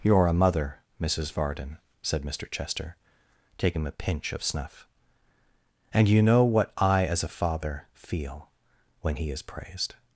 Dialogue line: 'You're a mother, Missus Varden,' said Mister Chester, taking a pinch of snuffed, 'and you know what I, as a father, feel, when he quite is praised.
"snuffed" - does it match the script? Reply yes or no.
no